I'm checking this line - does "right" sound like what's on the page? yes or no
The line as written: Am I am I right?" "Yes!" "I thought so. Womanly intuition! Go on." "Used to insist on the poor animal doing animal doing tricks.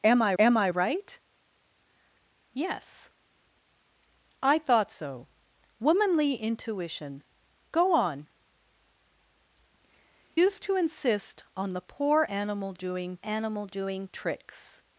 yes